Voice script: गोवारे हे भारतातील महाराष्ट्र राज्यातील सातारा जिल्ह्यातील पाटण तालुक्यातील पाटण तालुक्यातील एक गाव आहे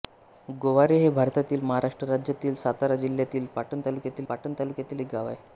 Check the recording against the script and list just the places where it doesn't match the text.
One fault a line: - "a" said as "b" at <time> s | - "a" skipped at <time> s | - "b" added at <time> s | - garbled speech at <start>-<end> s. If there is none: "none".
none